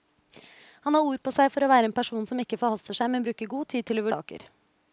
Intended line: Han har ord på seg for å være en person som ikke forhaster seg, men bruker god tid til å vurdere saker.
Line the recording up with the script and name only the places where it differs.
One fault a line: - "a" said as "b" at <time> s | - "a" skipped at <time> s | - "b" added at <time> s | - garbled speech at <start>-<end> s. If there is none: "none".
- "vurdere" skipped at 4.1 s